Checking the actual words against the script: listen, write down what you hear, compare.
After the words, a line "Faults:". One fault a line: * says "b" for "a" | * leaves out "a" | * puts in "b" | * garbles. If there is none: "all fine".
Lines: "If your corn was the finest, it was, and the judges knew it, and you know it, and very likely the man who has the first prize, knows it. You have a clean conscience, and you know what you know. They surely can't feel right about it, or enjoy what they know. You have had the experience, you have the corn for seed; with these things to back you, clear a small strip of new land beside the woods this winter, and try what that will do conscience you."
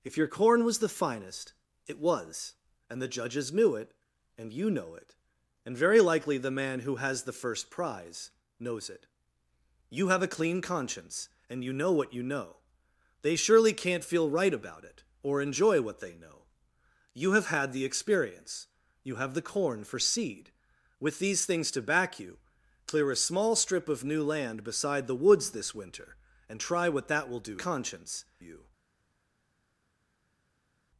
"If your corn was the finest, it was, and the judges knew it, and you know it, and very likely the man who has the first prize, knows it. You have a clean conscience, and you know what you know. They surely can't feel right about it, or enjoy what they know. You have had the experience, you have the corn for seed; with these things to back you, clear a small strip of new land beside the woods this winter, and try what that will do conscience you."
Faults:
all fine